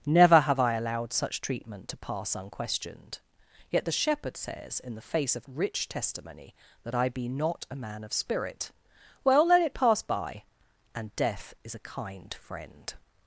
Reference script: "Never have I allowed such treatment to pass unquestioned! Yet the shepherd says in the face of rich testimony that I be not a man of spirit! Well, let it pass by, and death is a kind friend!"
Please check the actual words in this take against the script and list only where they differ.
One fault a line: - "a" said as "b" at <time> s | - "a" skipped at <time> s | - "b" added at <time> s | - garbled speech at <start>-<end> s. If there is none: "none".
none